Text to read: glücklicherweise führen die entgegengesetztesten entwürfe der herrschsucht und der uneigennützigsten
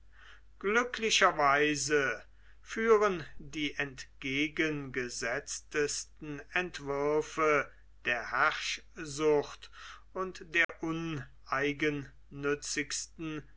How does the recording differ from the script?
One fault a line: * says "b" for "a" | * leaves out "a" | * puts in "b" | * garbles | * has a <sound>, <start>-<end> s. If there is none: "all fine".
* has a dropout, 10.6-10.7 s